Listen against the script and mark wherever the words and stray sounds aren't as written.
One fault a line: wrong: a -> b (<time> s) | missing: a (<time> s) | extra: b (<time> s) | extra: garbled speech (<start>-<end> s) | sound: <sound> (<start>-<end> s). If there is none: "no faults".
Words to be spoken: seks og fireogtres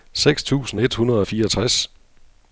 extra: tusind et hundrede (0.4 s)